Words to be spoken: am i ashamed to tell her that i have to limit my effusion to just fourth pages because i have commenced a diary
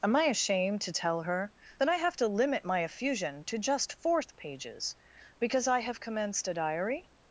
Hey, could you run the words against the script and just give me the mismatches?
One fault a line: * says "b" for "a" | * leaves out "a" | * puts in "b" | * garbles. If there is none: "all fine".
all fine